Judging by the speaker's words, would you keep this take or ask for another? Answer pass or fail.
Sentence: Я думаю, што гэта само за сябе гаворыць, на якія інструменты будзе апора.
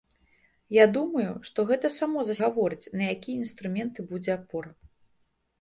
fail